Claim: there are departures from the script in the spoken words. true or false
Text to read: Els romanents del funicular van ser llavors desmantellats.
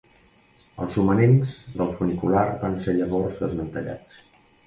false